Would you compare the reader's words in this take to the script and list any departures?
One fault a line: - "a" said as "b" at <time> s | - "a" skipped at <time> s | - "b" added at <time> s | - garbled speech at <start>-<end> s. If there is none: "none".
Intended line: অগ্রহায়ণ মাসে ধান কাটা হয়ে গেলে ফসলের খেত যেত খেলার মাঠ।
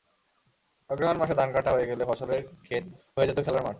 - "হয়ে" added at 3.2 s